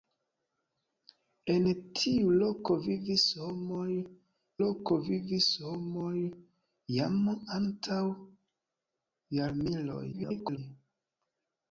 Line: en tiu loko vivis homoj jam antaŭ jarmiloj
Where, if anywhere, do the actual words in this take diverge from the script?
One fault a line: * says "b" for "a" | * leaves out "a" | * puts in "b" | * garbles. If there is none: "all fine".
* puts in "loko vivis homoj"
* garbles